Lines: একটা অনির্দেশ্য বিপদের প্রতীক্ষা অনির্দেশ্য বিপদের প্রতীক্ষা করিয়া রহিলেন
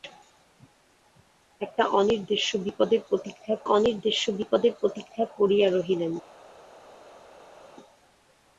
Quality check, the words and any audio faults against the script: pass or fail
pass